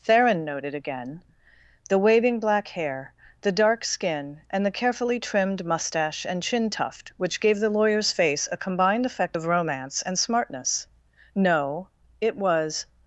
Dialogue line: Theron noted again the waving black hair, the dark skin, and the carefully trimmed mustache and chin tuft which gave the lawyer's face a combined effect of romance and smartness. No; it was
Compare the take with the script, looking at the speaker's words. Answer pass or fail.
pass